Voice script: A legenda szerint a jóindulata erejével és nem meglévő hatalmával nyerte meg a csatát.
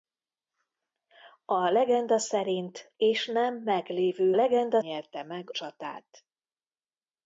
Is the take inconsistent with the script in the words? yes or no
yes